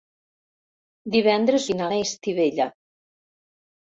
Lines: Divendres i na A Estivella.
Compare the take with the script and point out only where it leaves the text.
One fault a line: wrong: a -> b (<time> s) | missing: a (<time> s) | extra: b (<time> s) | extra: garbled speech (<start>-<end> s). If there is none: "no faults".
no faults